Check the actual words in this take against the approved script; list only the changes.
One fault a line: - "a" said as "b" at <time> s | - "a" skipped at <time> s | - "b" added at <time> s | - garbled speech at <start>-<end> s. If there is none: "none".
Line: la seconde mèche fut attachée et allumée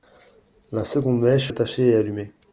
- "fut" skipped at 1.5 s